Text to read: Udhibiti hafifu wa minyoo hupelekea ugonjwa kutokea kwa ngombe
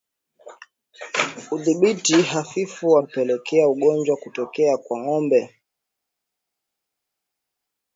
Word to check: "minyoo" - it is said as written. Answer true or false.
false